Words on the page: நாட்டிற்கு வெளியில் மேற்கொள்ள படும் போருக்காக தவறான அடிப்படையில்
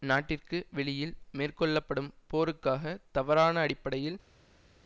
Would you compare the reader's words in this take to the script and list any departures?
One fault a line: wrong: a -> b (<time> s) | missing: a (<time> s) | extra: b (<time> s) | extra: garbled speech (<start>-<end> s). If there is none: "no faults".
no faults